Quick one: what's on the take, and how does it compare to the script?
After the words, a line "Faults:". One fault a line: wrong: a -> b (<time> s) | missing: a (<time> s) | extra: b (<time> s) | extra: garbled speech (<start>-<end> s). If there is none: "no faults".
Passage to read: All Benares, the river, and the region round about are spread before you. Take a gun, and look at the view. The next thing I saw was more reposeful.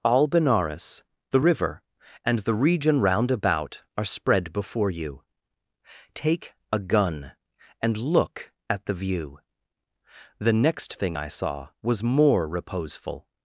All Benares, the river, and the region round about are spread before you. Take a gun, and look at the view. The next thing I saw was more reposeful.
Faults:
no faults